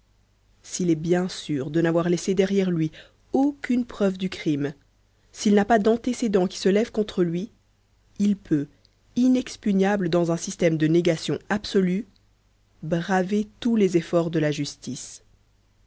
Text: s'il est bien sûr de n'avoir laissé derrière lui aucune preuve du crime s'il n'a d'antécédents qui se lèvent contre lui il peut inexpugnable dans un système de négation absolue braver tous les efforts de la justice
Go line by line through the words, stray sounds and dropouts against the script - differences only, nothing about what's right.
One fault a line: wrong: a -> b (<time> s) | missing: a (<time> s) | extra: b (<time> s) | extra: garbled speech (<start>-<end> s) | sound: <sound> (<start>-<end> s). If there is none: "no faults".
extra: pas (5.6 s)